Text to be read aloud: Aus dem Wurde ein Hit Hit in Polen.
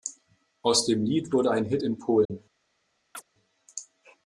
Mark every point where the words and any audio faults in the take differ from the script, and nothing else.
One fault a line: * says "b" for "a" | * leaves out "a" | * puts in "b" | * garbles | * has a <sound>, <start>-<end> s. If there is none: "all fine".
* puts in "Lied"
* leaves out "Hit"
* has a dropout, 2.3-2.3 s
* has a chirp, 3.1-3.2 s